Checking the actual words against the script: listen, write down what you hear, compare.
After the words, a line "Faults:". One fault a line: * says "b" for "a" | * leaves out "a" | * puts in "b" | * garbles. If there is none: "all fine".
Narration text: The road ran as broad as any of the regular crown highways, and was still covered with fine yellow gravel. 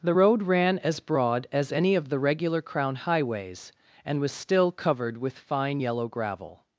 The road ran as broad as any of the regular crown highways, and was still covered with fine yellow gravel.
Faults:
all fine